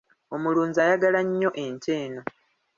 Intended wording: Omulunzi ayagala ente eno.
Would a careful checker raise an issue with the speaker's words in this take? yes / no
yes